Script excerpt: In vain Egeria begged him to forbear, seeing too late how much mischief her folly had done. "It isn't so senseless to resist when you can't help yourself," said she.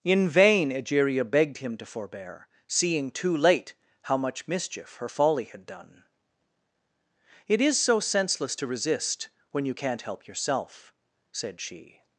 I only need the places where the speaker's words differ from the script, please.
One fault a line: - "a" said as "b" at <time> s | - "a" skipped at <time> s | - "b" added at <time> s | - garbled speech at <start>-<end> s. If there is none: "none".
- "isn't" said as "is" at 7.6 s